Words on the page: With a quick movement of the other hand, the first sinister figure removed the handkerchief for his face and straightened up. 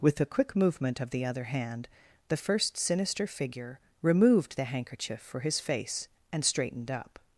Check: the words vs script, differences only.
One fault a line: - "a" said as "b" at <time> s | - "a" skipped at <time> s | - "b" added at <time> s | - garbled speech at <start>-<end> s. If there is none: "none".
none